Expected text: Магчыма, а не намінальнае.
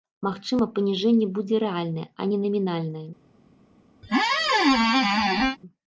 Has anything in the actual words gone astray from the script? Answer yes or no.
yes